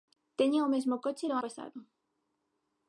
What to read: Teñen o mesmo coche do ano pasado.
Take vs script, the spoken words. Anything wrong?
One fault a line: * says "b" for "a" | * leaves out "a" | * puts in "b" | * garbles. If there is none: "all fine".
* leaves out "ano"